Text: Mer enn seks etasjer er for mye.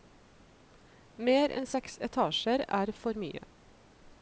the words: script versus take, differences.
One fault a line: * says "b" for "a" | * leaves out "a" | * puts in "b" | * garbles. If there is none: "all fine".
all fine